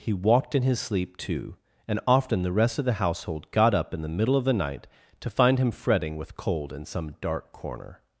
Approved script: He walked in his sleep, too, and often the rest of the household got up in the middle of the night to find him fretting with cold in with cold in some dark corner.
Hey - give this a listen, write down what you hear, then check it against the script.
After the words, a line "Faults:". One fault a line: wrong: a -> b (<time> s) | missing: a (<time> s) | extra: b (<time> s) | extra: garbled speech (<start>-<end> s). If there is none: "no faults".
He walked in his sleep, too, and often the rest of the household got up in the middle of the night to find him fretting with cold in some dark corner.
Faults:
missing: with cold in (6.8 s)